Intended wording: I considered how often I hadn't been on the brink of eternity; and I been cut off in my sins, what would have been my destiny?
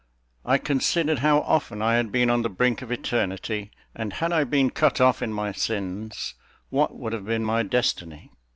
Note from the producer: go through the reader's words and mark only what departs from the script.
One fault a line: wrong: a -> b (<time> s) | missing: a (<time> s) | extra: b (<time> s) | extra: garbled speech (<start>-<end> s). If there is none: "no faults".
wrong: hadn't -> had (1.9 s)
extra: had (4.1 s)